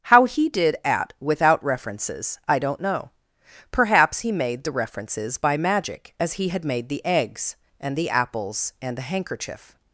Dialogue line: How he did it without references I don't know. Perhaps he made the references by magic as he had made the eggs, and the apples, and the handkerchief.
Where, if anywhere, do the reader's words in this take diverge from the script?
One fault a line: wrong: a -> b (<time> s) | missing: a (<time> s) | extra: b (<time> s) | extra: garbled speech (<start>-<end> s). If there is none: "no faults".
wrong: it -> at (0.8 s)